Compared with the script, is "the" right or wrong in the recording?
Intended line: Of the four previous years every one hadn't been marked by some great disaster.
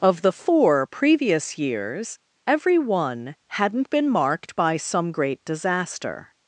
right